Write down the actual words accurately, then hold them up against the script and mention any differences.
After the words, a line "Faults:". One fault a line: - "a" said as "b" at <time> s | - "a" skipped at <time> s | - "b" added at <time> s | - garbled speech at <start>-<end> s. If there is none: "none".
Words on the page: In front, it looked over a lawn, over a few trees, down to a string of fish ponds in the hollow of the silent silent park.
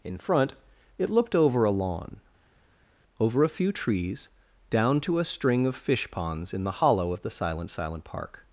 In front, it looked over a lawn, over a few trees, down to a string of fish ponds in the hollow of the silent silent park.
Faults:
none